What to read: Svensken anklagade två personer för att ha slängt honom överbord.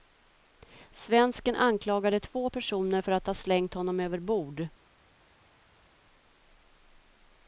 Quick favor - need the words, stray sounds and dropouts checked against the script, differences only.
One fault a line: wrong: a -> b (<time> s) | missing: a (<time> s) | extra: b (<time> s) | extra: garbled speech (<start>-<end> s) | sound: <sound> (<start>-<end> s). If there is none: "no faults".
no faults